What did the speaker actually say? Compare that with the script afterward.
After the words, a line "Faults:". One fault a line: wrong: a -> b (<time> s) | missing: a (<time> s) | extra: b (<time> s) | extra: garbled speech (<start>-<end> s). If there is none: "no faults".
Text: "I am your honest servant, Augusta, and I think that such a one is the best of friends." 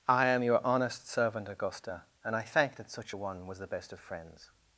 "I am your honest servant, Augusta, and I thank that such a one was the best of friends."
Faults:
wrong: think -> thank (2.4 s)
wrong: is -> was (3.5 s)